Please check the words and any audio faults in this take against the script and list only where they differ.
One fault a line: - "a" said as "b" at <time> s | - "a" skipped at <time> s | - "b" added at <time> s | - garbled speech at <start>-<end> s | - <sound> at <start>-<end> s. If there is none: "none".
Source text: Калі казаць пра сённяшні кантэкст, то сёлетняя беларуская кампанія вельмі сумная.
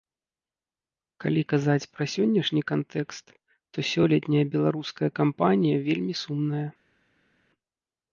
none